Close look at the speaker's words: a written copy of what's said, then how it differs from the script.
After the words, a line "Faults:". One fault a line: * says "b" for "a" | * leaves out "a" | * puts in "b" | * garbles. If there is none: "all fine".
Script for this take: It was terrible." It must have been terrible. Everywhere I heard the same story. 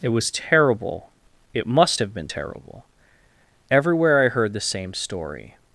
It was terrible." It must have been terrible. Everywhere I heard the same story.
Faults:
all fine